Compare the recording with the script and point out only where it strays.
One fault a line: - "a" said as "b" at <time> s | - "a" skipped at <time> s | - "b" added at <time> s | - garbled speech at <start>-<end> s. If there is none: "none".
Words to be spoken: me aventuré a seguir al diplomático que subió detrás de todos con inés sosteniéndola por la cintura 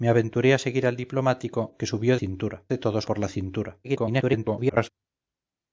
- "detrás" said as "cintura" at 2.1 s
- "con inés sosteniéndola" skipped at 3.1 s
- garbled speech at 3.8-4.9 s